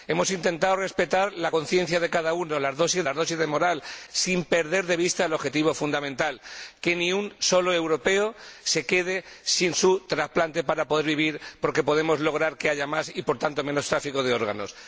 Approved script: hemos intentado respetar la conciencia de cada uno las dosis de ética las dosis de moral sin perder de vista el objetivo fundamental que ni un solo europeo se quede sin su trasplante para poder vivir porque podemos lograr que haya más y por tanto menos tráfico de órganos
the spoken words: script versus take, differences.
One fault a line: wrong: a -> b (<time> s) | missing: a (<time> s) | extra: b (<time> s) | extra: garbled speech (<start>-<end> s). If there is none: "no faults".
missing: de ética (3.1 s)